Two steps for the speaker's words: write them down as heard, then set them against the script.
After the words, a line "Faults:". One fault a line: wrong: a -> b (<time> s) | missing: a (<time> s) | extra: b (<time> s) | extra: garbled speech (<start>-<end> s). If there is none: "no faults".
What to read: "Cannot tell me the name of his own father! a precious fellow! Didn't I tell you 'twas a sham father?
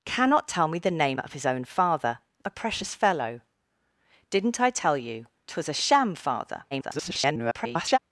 "Cannot tell me the name of his own father! a precious fellow! Didn't I tell you 'twas a sham father? [garbled]
Faults:
extra: garbled speech (6.7-8.0 s)